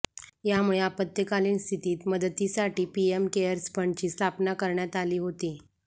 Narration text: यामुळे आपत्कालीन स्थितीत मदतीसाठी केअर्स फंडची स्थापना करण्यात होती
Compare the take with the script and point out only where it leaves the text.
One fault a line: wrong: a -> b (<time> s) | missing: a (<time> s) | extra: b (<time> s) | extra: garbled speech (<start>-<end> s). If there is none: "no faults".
extra: पीएम (3.0 s)
extra: आली (5.0 s)